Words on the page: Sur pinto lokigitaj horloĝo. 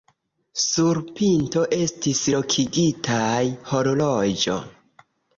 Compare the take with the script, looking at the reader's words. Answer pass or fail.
fail